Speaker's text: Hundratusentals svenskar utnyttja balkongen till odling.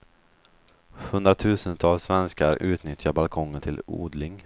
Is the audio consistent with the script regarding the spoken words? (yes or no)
yes